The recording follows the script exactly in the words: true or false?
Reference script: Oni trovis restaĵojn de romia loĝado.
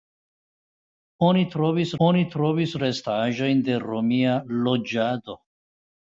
false